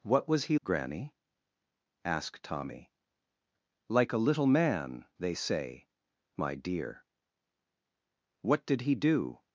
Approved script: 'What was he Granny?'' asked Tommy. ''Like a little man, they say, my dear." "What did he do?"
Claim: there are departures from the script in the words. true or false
false